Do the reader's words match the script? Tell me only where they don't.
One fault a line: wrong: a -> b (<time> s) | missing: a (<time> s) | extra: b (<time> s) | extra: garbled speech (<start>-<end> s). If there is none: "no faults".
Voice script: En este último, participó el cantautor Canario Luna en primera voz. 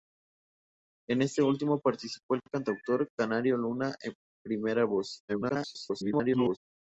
extra: garbled speech (5.3-6.6 s)